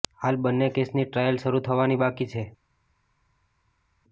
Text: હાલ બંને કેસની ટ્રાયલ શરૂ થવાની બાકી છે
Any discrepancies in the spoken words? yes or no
no